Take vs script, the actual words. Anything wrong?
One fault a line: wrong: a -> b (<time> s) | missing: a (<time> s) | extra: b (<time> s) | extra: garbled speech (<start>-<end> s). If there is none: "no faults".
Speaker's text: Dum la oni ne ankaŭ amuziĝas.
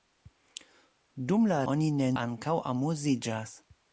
no faults